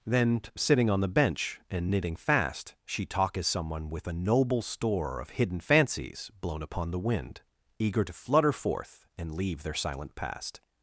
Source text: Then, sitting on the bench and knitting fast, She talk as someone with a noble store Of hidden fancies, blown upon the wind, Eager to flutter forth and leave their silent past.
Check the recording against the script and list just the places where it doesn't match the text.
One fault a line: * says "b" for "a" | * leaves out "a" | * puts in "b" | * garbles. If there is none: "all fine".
all fine